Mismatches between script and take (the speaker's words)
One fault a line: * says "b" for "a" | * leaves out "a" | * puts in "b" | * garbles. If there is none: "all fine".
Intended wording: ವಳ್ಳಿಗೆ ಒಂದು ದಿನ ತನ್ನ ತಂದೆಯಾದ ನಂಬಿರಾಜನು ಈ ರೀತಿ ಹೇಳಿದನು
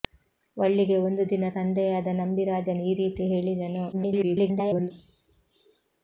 * leaves out "ತನ್ನ"
* garbles